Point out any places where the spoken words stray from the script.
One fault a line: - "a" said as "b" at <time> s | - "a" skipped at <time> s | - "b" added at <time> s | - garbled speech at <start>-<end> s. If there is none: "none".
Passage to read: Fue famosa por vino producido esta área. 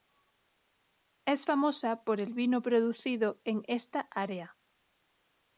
- "Fue" said as "Es" at 1.3 s
- "el" added at 2.2 s
- "en" added at 3.4 s